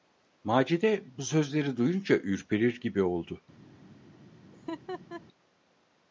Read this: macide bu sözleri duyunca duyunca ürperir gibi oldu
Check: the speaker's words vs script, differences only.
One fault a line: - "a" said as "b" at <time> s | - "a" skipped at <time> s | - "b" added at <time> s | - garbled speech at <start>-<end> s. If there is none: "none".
- "duyunca" skipped at 2.1 s